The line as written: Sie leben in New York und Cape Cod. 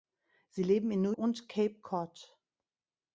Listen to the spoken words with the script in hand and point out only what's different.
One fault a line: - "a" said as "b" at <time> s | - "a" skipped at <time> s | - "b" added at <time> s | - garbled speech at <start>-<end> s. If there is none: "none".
- "York" skipped at 1.1 s